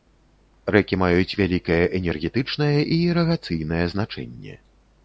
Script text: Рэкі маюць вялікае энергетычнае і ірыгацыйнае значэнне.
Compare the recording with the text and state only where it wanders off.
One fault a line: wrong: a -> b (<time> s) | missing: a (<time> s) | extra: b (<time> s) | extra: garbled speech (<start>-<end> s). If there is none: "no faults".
no faults